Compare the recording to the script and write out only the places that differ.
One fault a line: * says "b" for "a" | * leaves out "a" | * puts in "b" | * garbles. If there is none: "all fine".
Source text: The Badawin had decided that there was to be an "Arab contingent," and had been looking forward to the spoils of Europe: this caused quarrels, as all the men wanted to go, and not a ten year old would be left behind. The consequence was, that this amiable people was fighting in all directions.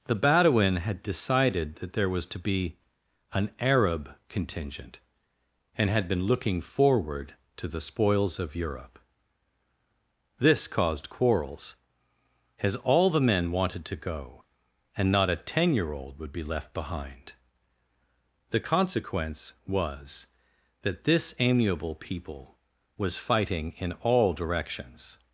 all fine